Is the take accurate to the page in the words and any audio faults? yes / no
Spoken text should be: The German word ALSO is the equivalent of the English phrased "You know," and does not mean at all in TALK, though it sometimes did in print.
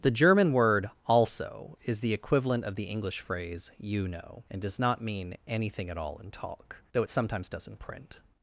no